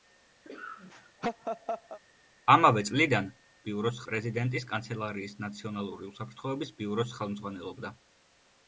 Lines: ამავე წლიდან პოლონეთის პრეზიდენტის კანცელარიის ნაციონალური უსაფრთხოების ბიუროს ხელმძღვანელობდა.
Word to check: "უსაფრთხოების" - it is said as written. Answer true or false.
true